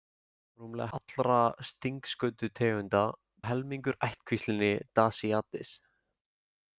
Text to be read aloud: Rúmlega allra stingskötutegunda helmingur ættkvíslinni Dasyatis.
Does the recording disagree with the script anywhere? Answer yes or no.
no